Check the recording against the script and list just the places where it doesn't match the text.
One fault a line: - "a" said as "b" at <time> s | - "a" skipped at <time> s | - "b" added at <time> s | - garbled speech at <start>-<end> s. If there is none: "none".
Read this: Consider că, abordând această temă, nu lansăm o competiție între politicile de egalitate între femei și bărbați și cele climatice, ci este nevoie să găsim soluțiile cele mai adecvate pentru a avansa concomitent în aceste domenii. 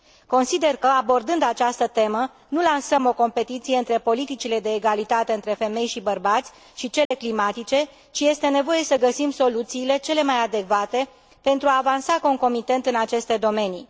none